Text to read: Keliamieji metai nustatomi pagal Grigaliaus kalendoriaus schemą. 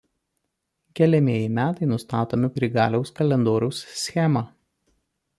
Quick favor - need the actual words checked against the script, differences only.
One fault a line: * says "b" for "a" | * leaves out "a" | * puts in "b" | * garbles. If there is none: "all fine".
* leaves out "pagal"